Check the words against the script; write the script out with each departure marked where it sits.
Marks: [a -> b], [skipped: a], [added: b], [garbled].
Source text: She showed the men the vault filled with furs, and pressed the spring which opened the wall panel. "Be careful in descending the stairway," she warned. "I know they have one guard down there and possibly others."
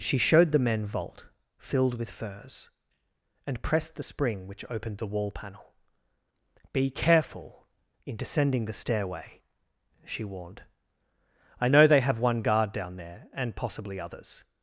She showed the men [skipped: the] vault filled with furs, and pressed the spring which opened the wall panel. "Be careful in descending the stairway," she warned. "I know they have one guard down there and possibly others."